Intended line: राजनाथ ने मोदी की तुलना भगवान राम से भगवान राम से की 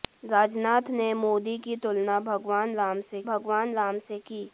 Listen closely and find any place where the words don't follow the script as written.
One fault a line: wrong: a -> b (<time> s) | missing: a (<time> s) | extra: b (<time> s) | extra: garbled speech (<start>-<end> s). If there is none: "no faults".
no faults